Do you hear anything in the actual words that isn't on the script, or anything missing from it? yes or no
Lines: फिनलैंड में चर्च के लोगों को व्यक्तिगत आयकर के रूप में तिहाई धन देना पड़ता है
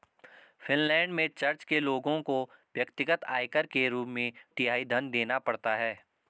no